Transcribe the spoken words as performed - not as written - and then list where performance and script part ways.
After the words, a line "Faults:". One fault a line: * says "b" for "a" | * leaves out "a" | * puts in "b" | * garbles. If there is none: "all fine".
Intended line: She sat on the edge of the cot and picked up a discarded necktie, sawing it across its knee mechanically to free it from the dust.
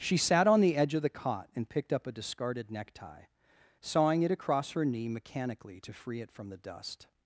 She sat on the edge of the cot and picked up a discarded necktie, sawing it across her knee mechanically to free it from the dust.
Faults:
* says "her" for "its"